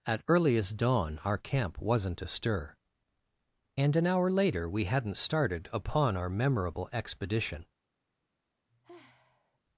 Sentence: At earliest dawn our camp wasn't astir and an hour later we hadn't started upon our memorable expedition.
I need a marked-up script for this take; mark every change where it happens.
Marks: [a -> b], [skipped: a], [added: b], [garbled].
At earliest dawn our camp wasn't astir and an hour later we hadn't started upon our memorable expedition.